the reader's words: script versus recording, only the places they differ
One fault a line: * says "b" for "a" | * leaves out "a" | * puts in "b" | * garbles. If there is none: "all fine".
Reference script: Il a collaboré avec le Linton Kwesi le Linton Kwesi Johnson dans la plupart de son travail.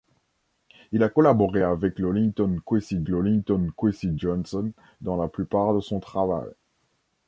all fine